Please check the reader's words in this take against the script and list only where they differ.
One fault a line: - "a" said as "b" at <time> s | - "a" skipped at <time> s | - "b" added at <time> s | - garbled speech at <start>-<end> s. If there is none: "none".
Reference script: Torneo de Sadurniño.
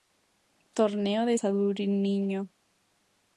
none